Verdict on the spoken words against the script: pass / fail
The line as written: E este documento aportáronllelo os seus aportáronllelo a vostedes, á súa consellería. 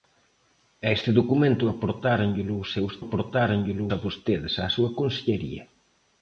pass